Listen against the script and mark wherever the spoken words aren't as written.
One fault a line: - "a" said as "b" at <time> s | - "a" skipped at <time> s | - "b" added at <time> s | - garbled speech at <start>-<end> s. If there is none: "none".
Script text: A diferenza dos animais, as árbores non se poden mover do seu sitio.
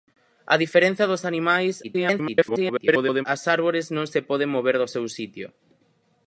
- garbled speech at 1.8-3.3 s